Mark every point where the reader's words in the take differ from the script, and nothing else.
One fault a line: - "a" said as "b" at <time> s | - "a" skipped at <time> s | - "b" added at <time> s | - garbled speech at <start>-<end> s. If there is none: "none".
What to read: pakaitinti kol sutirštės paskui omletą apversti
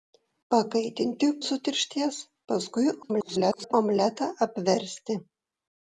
- "kol" skipped at 1.3 s
- garbled speech at 3.0-3.7 s